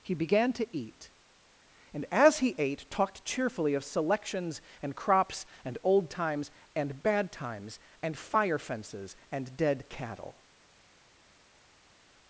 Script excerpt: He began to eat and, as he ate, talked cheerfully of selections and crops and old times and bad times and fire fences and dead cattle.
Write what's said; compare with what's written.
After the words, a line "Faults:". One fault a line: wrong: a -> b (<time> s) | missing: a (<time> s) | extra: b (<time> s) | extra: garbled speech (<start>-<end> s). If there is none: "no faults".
He began to eat and, as he ate, talked cheerfully of selections and crops and old times and bad times and fire fences and dead cattle.
Faults:
no faults